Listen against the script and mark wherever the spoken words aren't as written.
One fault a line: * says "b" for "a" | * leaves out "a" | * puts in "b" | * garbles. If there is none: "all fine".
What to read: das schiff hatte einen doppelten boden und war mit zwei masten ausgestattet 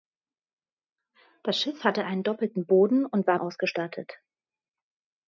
* leaves out "mit zwei masten"